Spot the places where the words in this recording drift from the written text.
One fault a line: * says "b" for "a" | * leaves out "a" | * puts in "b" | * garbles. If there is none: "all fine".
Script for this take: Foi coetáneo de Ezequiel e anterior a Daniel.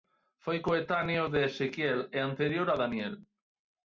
all fine